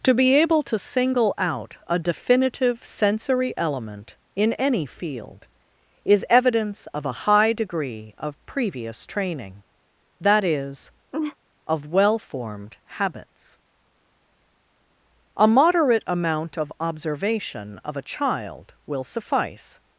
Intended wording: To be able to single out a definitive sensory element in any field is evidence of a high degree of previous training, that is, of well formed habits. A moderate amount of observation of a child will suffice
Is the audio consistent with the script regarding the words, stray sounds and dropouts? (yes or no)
no